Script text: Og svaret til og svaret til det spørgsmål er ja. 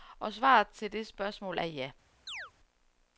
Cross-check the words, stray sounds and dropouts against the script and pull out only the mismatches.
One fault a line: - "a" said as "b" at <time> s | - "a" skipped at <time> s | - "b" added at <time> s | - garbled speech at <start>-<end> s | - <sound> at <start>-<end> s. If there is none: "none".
- "og svaret til" skipped at 0.9 s
- chirp at 2.3-2.5 s